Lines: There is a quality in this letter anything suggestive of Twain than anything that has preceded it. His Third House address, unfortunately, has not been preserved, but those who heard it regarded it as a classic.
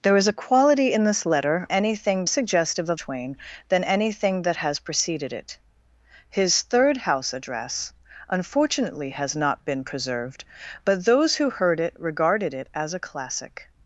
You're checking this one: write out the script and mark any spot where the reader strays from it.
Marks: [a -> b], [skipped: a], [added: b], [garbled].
There is a quality in this letter anything suggestive of Twain than anything that has preceded it. His Third House address, unfortunately, has not been preserved, but those who heard it regarded it as a classic.